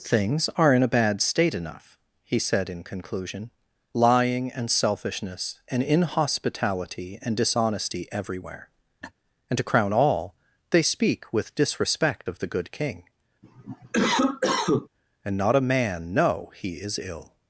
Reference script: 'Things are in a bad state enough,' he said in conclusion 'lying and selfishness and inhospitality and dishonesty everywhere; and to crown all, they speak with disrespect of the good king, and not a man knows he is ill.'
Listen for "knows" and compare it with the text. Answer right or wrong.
wrong